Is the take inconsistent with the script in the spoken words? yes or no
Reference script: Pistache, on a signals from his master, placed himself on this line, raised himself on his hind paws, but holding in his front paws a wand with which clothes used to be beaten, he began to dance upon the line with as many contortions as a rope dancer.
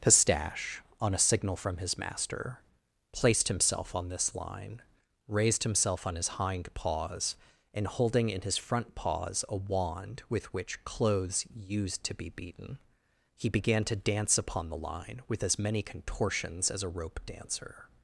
yes